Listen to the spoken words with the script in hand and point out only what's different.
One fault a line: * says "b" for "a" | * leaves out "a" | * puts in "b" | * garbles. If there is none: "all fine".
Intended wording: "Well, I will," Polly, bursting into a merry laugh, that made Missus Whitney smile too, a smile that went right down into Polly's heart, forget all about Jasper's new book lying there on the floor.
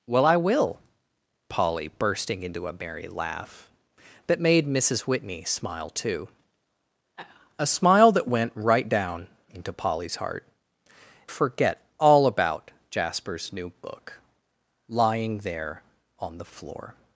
all fine